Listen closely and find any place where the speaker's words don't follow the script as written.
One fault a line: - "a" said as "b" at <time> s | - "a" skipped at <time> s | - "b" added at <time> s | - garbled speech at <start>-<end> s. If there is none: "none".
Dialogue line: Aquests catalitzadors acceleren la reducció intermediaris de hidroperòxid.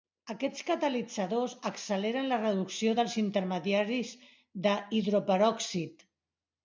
- "dels" added at 3.0 s